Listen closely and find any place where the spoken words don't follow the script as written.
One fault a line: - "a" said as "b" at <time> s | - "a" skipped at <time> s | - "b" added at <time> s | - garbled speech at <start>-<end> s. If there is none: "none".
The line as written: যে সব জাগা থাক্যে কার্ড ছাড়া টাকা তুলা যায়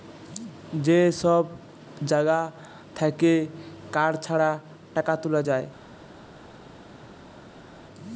none